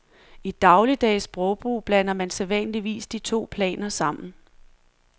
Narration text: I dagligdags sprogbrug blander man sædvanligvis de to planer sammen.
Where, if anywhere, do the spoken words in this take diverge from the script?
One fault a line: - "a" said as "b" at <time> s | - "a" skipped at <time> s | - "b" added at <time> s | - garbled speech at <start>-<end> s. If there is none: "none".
none